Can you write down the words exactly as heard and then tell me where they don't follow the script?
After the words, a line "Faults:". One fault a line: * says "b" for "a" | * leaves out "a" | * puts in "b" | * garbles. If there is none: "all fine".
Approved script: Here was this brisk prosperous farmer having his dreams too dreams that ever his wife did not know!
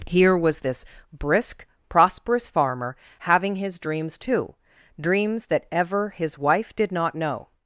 Here was this brisk prosperous farmer having his dreams too dreams that ever his wife did not know!
Faults:
all fine